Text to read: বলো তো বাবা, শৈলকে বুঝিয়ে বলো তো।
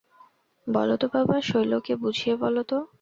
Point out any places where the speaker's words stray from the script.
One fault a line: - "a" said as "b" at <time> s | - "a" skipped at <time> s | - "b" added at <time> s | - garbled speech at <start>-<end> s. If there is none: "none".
none